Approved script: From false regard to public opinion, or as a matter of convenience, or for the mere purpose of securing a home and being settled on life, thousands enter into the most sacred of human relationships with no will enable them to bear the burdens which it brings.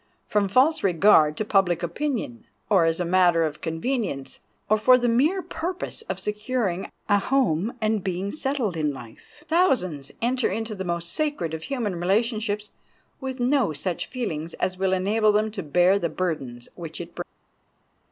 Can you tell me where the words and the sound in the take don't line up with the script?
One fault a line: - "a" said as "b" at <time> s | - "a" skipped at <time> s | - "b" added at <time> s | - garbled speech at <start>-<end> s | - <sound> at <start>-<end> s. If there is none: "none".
- "on" said as "in" at 8.8 s
- "such feelings as" added at 13.7 s